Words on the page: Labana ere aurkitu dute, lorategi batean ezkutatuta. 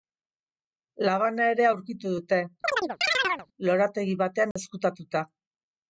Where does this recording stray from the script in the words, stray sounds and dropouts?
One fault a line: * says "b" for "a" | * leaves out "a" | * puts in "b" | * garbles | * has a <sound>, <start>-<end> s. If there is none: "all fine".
* has a chirp, 2.6-3.5 s
* has a dropout, 4.5-4.6 s